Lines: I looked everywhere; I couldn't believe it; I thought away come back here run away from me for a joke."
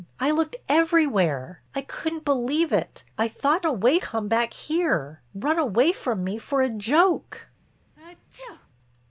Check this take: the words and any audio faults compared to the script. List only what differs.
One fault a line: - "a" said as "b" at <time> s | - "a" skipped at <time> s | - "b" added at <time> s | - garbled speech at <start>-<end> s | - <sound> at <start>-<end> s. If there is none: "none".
- sneeze at 8.0-8.7 s